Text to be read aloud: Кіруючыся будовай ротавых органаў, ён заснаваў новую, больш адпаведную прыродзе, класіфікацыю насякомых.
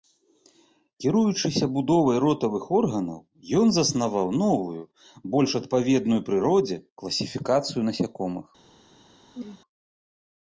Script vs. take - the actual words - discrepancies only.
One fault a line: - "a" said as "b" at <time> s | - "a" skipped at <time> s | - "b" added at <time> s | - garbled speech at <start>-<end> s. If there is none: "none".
none